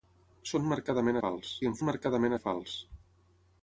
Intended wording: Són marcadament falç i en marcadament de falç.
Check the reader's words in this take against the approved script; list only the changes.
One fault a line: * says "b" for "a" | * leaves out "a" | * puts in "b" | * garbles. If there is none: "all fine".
all fine